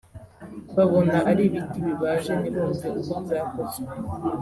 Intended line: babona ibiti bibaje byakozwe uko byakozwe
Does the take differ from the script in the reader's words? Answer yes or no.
yes